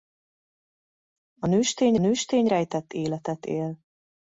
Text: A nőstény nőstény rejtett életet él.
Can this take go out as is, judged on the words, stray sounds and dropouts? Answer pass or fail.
pass